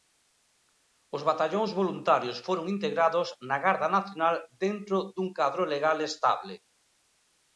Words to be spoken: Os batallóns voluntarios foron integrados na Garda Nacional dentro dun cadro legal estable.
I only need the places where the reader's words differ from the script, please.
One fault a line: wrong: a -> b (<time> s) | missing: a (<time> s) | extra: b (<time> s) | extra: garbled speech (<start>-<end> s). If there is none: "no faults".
no faults